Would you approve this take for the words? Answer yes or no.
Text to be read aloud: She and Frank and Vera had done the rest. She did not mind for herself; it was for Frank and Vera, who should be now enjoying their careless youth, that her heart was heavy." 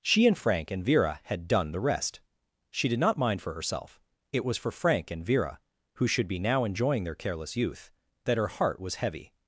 yes